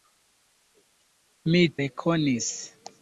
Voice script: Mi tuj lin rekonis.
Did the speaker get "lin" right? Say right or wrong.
wrong